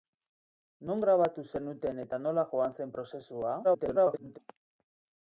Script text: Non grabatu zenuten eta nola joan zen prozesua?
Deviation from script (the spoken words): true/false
true